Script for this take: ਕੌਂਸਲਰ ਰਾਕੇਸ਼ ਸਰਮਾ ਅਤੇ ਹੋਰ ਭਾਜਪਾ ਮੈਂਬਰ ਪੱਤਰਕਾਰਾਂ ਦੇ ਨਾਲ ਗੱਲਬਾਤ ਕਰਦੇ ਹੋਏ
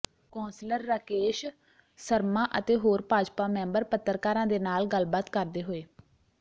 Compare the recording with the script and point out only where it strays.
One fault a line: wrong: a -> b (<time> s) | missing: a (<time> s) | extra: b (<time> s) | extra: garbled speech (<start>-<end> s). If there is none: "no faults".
no faults